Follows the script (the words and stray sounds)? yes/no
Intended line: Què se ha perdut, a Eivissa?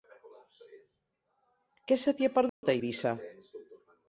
no